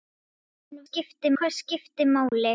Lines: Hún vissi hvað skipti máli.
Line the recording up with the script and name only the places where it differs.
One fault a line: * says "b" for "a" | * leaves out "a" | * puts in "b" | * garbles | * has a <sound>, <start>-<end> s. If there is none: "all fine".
* says "skipti" for "vissi"
* has a dropout, 2.3-2.3 s